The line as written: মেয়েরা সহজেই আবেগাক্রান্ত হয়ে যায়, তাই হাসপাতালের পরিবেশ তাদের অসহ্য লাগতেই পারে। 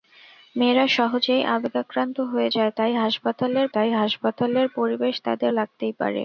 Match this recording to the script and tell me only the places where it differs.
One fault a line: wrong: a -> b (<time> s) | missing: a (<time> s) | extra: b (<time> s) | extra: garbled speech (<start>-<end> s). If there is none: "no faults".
extra: তাই হাসপাতালের (3.7 s)
missing: অসহ্য (5.5 s)